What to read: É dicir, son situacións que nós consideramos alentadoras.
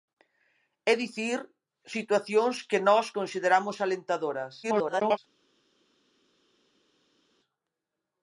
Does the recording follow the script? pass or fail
fail